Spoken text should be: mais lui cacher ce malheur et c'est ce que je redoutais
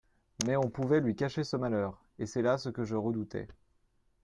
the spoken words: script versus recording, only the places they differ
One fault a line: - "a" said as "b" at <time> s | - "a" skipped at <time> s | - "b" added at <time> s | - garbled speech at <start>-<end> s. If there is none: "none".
- "on pouvait" added at 0.6 s
- "là" added at 2.4 s